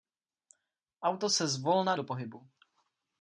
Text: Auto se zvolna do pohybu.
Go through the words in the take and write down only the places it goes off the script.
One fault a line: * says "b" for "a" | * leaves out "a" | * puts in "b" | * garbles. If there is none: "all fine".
all fine